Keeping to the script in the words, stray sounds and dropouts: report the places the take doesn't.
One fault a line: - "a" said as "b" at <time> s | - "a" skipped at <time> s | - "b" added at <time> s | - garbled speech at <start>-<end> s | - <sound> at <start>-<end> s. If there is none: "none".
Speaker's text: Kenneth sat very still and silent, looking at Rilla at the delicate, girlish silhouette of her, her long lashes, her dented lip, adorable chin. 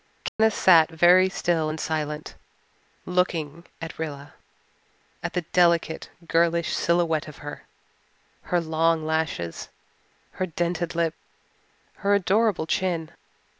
- dropout at 0.3-0.4 s
- "her" added at 11.9 s